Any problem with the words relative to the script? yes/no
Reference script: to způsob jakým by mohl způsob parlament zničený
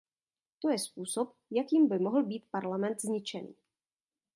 yes